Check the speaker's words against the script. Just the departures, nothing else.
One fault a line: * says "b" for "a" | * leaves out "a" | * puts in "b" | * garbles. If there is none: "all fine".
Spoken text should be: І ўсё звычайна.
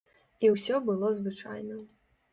* puts in "было"